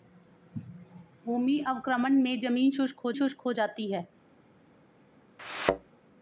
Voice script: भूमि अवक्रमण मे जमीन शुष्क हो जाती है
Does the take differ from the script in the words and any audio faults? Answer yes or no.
yes